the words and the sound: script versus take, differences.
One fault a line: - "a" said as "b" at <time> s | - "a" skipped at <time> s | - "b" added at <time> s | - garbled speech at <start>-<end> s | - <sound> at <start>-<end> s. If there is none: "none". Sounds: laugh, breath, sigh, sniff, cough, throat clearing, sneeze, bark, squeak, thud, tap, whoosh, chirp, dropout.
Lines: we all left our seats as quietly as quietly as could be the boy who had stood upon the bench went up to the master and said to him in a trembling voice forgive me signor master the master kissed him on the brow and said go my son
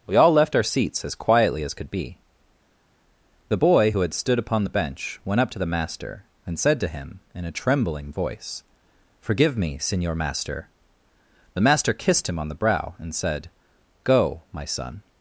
- "quietly as" skipped at 1.7 s